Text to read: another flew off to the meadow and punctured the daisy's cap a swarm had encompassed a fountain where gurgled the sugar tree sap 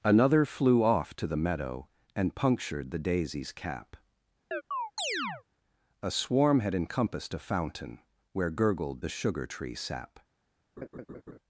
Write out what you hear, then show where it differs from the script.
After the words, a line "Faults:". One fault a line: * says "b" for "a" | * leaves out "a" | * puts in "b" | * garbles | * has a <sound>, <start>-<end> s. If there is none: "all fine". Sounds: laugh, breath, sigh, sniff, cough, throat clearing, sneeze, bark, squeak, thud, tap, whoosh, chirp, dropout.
another flew off to the meadow and punctured the daisy's cap a swarm had encompassed a fountain where gurgled the sugar tree sap
Faults:
* has a chirp, 4.5-5.4 s
* has a laugh, 10.8-11.4 s